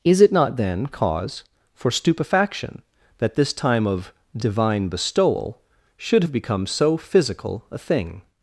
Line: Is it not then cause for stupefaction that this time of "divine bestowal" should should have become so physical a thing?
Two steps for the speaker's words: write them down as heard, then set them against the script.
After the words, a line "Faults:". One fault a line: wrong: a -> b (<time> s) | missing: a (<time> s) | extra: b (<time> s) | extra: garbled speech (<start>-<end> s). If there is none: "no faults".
Is it not then cause for stupefaction that this time of "divine bestowal" should have become so physical a thing?
Faults:
missing: should (6.2 s)